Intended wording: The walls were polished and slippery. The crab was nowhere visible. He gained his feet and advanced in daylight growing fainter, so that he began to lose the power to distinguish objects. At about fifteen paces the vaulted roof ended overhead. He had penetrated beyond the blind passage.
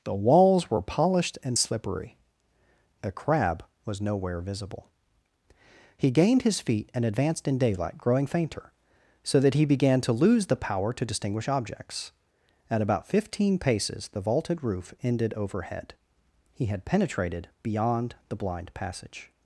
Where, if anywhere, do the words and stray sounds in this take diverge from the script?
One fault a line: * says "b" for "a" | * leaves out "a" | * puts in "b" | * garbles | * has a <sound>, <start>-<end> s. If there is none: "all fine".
* says "A" for "The"